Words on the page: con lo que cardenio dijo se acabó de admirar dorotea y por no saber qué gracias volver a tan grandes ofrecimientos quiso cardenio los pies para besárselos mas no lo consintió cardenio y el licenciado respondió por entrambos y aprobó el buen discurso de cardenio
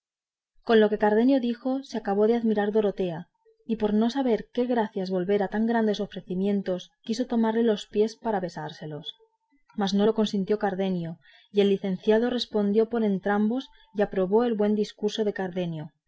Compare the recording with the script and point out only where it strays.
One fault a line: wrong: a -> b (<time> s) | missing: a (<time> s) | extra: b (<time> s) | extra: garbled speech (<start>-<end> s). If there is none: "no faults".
wrong: cardenio -> tomarle (7.2 s)